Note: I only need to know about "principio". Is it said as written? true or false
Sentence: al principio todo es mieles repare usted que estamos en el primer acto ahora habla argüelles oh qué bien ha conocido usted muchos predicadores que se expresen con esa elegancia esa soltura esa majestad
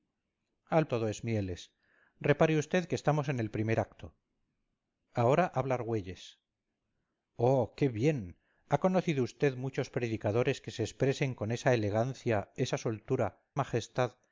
false